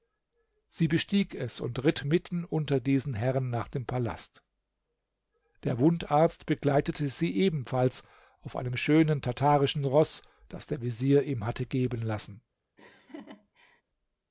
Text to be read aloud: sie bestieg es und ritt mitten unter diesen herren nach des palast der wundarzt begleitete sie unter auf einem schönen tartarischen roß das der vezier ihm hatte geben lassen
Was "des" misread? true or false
true